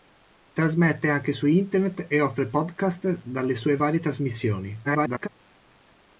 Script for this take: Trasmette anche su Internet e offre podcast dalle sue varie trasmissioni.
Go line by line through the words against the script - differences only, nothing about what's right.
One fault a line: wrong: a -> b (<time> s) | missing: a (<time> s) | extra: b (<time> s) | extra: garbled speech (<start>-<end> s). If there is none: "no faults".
extra: garbled speech (4.8-5.3 s)